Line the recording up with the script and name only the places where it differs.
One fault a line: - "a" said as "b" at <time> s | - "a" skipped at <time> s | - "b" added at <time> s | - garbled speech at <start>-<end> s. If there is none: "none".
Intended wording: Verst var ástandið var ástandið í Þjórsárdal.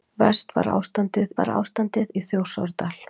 none